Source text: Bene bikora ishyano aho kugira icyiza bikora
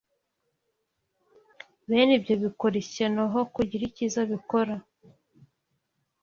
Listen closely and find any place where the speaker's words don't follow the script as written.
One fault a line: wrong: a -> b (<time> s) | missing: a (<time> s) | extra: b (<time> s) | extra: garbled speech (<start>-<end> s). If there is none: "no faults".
extra: ibyo (2.2 s)